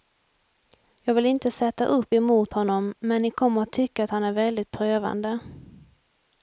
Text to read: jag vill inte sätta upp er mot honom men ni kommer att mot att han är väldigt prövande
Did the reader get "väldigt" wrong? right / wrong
right